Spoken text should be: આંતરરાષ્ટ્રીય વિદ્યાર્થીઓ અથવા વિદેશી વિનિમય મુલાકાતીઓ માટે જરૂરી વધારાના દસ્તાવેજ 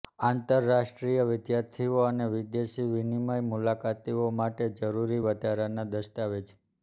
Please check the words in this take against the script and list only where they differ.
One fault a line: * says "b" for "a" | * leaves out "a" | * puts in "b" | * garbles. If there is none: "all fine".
* says "અને" for "અથવા"